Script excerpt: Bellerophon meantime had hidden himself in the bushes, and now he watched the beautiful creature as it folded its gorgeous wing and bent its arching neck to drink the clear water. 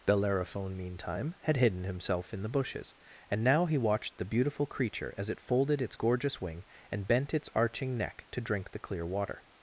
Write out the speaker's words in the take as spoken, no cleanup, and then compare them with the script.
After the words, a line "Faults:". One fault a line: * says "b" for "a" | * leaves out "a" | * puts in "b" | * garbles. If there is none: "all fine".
Bellerophon meantime had hidden himself in the bushes, and now he watched the beautiful creature as it folded its gorgeous wing and bent its arching neck to drink the clear water.
Faults:
all fine